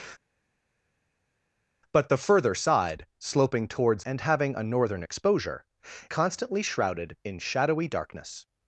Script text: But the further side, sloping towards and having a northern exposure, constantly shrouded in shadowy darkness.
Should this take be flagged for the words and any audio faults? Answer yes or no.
no